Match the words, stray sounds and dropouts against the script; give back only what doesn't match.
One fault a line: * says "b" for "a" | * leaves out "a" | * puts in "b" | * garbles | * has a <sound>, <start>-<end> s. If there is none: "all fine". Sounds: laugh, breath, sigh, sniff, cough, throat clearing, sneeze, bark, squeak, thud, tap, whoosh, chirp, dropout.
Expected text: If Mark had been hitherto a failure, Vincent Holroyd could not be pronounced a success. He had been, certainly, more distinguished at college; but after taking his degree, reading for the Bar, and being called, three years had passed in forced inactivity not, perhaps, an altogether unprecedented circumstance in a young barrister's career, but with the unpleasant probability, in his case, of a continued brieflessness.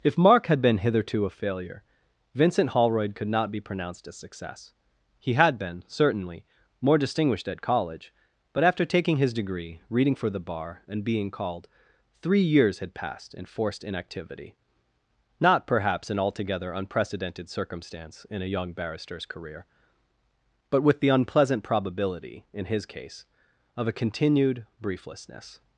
all fine